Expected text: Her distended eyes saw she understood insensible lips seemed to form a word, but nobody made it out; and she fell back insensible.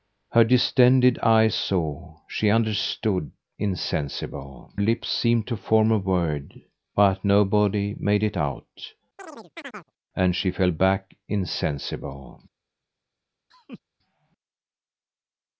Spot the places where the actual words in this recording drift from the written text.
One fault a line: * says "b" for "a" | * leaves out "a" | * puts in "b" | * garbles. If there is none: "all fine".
all fine